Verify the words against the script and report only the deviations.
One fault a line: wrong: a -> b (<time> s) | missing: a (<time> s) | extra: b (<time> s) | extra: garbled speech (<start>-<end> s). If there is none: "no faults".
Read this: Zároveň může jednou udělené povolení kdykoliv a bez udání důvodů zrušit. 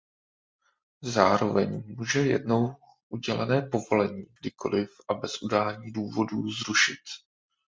no faults